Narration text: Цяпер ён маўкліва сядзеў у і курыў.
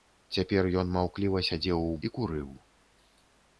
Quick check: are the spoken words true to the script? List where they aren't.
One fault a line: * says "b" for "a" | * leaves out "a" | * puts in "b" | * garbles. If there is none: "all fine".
all fine